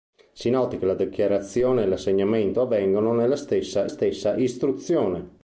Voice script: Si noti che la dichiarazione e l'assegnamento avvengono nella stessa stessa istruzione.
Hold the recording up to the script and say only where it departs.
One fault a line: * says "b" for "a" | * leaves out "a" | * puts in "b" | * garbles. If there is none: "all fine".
all fine